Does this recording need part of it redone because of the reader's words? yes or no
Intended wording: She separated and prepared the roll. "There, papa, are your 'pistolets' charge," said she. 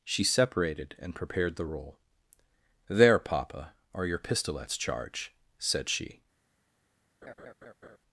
no